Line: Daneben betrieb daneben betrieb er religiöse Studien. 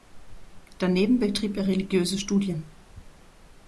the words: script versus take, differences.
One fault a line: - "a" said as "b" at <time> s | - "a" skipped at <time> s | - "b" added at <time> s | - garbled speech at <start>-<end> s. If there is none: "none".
- "daneben betrieb" skipped at 1.6 s